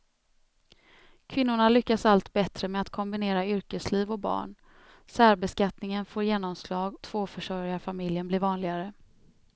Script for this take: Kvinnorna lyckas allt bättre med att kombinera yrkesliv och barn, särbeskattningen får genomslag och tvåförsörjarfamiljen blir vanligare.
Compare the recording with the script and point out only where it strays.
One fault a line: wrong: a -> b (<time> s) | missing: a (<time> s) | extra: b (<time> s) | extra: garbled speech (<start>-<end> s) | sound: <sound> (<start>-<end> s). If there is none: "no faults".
missing: och (7.0 s)